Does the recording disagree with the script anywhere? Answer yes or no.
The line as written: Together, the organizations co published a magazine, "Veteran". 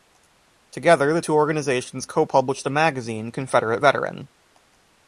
yes